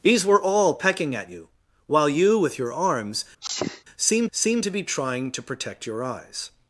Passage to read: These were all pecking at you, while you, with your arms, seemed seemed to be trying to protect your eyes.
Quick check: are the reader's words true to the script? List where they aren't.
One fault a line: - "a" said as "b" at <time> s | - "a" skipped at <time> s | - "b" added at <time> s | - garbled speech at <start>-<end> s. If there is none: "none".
none